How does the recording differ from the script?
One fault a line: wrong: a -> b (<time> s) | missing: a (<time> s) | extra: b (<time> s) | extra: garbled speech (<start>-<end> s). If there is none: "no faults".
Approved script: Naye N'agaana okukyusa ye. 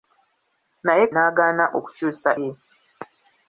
no faults